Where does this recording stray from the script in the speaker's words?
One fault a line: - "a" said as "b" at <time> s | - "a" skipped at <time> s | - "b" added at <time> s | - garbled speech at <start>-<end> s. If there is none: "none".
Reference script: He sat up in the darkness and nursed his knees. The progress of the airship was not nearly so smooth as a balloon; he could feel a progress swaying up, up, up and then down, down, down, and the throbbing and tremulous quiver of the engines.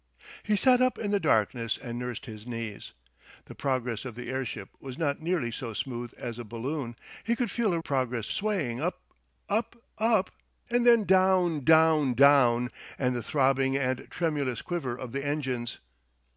none